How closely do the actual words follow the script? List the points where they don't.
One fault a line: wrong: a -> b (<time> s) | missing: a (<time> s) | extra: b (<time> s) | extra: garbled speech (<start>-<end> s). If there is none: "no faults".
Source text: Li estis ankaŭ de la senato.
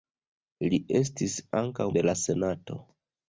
no faults